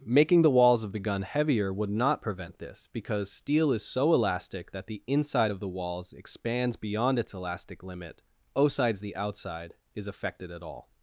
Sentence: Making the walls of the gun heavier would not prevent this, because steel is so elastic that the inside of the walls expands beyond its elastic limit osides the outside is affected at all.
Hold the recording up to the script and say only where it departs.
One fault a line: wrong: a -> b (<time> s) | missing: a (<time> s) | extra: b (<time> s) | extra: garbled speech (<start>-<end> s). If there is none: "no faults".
no faults